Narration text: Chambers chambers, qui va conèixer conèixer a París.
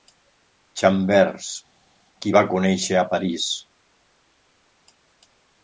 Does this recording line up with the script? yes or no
no